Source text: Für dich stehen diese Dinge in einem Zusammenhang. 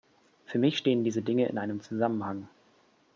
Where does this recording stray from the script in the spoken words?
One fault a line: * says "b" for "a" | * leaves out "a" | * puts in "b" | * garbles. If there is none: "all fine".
* says "mich" for "dich"